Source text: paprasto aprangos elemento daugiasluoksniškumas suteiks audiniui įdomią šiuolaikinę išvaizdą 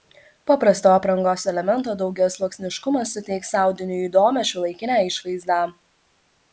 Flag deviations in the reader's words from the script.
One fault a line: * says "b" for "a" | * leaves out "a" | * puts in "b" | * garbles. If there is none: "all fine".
all fine